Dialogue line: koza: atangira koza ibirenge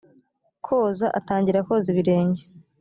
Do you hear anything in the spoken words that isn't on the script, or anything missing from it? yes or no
no